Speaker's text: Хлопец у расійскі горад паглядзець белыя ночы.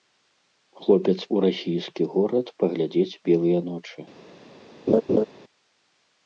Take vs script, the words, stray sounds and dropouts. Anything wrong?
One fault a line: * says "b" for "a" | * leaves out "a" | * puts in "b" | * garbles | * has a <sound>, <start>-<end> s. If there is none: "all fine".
* has a laugh, 4.9-5.2 s